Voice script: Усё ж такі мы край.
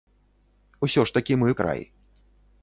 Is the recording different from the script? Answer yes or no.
no